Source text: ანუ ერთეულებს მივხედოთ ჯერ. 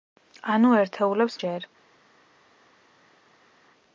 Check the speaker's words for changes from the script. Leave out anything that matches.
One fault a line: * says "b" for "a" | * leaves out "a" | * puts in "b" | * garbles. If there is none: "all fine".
* leaves out "მივხედოთ"